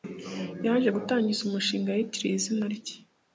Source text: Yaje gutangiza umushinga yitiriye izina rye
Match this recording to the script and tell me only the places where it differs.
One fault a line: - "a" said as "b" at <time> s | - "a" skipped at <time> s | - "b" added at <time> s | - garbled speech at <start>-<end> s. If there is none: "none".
none